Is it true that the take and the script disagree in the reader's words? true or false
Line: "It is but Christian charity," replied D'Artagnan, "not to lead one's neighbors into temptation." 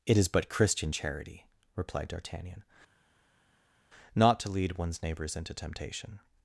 false